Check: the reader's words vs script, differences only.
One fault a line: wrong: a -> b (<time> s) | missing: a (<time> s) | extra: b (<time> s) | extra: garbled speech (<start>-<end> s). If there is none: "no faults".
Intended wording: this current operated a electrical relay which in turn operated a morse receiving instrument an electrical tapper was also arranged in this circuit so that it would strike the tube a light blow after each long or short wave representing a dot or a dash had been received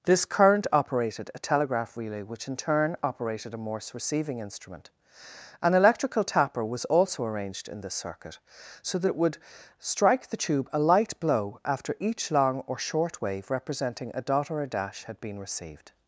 wrong: electrical -> telegraph (1.4 s)